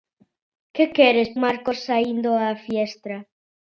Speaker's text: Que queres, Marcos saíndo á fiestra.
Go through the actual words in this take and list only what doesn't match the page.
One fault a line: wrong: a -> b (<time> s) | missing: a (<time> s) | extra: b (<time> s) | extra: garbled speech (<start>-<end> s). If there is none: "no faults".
no faults